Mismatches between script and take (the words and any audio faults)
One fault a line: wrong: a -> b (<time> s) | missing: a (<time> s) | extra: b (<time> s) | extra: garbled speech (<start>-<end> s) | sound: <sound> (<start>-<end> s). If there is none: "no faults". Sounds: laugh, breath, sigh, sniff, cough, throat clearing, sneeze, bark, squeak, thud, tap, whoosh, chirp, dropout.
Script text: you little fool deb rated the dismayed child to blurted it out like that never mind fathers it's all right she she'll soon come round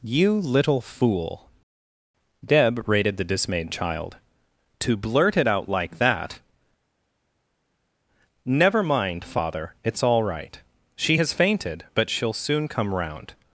wrong: blurted -> blurt (5.0 s)
wrong: fathers -> father (9.2 s)
extra: has fainted but (11.1 s)